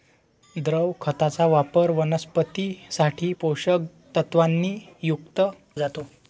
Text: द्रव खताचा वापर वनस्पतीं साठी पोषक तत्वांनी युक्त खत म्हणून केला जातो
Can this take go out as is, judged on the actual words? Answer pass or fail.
fail